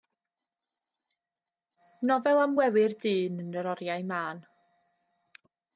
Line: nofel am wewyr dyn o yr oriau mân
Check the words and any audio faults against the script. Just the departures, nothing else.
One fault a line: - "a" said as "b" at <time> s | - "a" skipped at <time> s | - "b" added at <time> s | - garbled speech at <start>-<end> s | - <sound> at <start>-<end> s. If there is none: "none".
- "o" said as "yn" at 3.5 s